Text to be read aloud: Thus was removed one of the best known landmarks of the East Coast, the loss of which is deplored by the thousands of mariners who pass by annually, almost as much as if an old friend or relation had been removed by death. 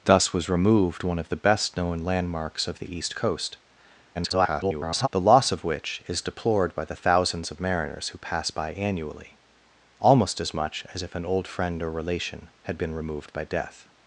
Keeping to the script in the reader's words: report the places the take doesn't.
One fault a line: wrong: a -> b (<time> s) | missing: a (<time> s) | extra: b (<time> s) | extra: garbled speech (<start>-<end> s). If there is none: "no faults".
extra: garbled speech (4.1-5.1 s)